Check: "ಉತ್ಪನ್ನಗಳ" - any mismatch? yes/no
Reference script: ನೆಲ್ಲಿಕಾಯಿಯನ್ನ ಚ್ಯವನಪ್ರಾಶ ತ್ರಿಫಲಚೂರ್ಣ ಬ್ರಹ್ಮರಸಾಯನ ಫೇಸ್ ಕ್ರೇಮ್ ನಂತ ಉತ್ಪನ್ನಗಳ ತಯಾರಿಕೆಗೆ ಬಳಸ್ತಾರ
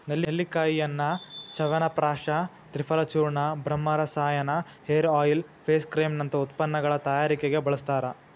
no